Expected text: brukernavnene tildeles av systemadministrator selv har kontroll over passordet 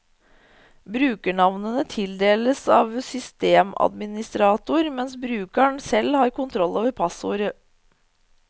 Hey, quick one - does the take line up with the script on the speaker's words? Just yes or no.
no